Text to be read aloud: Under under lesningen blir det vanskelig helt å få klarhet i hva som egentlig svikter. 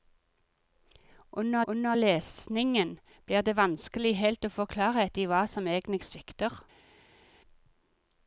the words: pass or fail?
pass